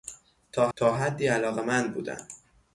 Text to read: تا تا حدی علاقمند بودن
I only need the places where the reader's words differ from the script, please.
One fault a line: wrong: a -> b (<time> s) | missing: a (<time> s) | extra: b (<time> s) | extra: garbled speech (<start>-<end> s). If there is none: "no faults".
no faults